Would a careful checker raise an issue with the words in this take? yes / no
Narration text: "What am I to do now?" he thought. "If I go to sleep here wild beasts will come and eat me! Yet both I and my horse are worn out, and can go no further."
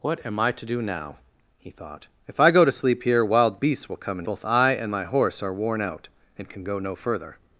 yes